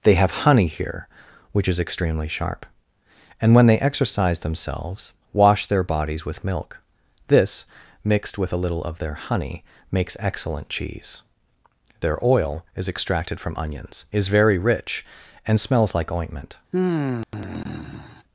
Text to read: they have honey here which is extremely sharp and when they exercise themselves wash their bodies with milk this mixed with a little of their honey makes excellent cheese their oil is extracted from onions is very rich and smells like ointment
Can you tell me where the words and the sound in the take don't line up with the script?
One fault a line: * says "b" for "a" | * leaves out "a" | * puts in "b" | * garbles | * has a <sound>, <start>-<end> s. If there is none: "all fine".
* has a sigh, 16.7-18.2 s